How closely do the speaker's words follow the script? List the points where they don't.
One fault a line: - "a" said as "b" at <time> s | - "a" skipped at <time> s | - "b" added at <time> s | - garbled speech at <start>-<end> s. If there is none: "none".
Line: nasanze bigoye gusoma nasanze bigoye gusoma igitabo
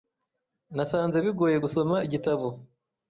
- "nasanze bigoye gusoma" skipped at 1.9 s